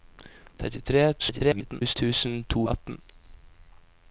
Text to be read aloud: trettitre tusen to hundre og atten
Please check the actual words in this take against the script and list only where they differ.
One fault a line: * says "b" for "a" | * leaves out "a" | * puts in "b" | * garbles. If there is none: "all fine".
* garbles
* leaves out "hundre"